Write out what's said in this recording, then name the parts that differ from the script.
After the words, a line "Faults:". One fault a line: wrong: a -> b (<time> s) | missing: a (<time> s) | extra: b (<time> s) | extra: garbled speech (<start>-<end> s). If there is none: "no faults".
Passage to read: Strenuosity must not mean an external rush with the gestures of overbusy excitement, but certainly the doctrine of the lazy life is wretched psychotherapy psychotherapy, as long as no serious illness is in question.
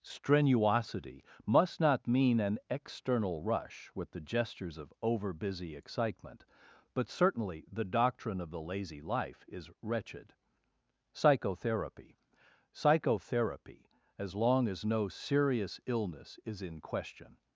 Strenuosity must not mean an external rush with the gestures of overbusy excitement, but certainly the doctrine of the lazy life is wretched psychotherapy psychotherapy, as long as no serious illness is in question.
Faults:
no faults